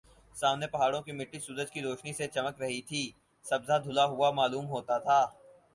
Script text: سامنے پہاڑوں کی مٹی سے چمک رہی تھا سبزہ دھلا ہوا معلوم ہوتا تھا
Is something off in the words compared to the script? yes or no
yes